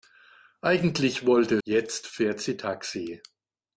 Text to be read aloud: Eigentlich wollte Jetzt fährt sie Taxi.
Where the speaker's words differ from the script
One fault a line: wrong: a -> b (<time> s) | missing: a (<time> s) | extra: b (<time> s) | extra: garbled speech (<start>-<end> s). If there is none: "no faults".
no faults